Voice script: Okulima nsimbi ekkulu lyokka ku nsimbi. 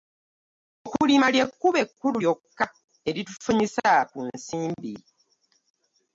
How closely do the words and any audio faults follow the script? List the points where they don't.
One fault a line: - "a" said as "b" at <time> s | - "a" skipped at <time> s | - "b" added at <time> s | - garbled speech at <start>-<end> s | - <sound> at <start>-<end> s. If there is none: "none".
- "nsimbi" said as "ly'ekkubo" at 1.3 s
- "eritufunyisa" added at 3.1 s